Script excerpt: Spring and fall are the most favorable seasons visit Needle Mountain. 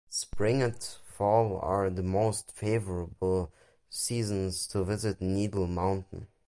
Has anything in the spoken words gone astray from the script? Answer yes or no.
yes